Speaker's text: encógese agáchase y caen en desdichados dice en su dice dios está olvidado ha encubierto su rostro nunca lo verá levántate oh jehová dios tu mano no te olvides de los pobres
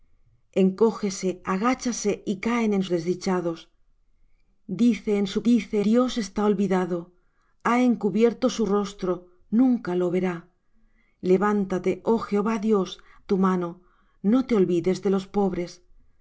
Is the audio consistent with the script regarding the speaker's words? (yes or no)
yes